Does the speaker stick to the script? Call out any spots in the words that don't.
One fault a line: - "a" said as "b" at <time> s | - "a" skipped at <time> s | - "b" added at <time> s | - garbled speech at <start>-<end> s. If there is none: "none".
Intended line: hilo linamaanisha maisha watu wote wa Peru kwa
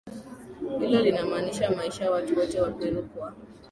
none